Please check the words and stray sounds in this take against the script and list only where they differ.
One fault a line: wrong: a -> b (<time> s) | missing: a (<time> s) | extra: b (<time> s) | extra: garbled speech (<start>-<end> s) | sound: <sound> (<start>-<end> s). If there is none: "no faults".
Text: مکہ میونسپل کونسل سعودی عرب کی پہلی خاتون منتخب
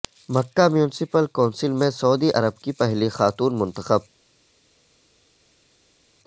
extra: میں (1.7 s)